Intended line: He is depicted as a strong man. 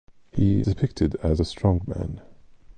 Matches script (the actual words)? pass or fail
fail